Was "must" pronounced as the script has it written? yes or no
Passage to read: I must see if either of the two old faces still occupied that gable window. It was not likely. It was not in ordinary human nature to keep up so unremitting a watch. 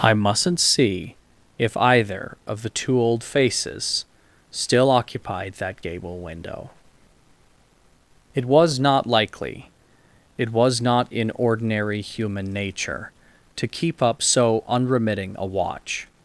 no